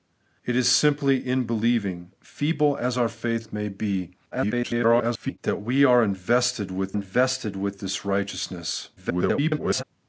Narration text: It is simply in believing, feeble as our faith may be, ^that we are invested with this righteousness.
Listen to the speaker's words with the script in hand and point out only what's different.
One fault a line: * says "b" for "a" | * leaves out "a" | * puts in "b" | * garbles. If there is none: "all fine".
* garbles
* puts in "invested with"
* garbles